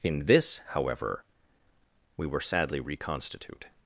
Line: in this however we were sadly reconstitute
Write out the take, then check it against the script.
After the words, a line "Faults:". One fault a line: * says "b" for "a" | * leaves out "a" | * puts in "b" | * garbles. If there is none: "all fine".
in this however we were sadly reconstitute
Faults:
all fine